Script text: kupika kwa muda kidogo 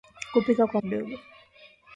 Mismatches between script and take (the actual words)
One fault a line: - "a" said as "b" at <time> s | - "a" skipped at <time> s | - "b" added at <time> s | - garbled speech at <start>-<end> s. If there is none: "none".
- "muda" skipped at 0.8 s